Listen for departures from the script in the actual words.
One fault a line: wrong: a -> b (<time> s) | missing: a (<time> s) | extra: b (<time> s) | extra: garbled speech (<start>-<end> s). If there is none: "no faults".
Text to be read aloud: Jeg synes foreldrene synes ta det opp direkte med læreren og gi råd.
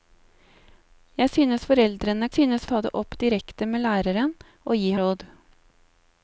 no faults